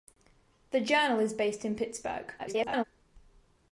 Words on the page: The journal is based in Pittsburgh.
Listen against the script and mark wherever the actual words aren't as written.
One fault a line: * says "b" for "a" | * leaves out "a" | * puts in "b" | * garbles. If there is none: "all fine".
* garbles